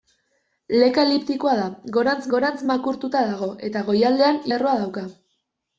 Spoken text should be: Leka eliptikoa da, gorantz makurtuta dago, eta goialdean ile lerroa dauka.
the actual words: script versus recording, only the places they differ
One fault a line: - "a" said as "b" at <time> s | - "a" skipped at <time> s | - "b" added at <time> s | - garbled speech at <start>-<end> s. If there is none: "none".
- "gorantz" added at 2.4 s
- "ile" skipped at 4.5 s